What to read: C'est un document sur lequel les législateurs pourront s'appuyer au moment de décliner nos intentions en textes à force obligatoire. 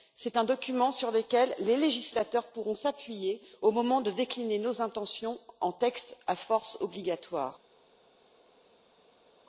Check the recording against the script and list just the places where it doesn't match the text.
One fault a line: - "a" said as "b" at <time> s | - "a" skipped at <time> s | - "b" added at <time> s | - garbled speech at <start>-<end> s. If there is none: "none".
none